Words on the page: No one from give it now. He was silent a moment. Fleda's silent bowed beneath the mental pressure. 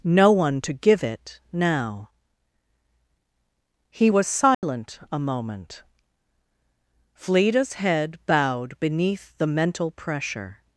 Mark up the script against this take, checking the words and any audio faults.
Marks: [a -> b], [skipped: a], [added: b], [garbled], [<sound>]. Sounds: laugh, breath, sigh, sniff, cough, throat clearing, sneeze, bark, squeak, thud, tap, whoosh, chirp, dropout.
No one [from -> to] give it now. He was silent [dropout] a moment. Fleda's [silent -> head] bowed beneath the mental pressure.